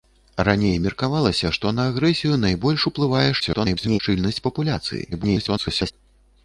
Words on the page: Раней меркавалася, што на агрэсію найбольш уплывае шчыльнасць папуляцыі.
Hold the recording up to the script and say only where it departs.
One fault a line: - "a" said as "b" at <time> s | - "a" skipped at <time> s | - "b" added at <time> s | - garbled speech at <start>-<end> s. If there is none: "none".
- garbled speech at 3.4-4.0 s
- garbled speech at 5.1-5.9 s